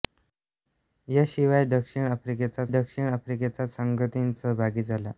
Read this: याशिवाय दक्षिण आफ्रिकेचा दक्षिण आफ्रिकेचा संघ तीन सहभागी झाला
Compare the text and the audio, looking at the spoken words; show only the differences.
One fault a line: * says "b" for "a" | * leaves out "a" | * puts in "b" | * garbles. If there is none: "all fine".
all fine